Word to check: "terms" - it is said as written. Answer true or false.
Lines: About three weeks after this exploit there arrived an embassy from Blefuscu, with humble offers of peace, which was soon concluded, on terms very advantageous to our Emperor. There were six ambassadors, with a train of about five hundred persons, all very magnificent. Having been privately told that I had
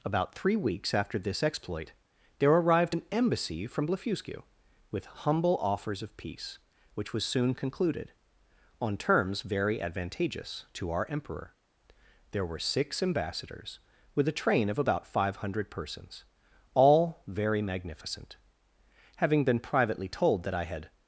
true